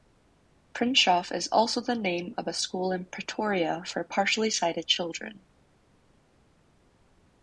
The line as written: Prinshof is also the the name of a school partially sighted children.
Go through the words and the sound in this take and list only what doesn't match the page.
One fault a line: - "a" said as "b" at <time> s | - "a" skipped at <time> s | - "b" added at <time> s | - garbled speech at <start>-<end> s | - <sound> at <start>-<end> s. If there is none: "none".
- "the" skipped at 1.9 s
- "in Pretoria for" added at 2.9 s